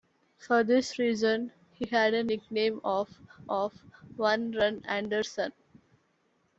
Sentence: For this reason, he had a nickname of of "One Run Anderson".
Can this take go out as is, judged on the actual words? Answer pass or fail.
pass